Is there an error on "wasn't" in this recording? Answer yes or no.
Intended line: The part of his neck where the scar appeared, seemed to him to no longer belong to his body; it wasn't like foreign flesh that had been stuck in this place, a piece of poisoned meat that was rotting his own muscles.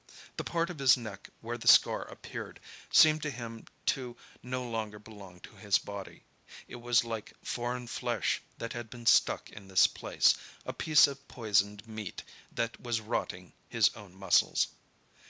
yes